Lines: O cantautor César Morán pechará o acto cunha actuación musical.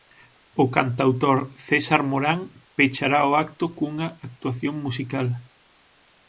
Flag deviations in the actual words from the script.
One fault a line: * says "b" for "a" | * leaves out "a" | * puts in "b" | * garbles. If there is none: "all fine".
all fine